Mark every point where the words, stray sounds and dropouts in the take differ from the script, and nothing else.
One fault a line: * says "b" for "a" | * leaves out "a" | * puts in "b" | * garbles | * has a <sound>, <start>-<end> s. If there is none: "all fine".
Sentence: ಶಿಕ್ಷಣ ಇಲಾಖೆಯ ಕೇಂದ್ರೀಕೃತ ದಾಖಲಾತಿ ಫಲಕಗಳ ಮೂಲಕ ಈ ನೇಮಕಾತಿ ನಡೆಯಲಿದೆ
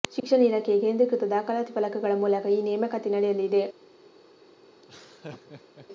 * has a dropout, 0.2-0.2 s
* has a laugh, 4.8-5.9 s